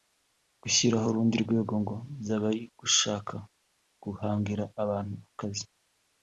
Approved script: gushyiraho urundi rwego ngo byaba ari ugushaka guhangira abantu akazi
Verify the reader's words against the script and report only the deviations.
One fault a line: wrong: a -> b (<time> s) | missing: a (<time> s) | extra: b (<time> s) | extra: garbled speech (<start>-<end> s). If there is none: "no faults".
no faults